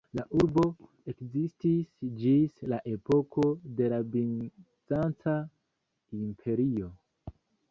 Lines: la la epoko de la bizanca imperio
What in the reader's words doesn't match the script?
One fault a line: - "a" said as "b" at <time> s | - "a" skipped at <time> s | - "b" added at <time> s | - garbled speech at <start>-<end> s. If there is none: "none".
- "urbo ekzistis ĝis" added at 0.4 s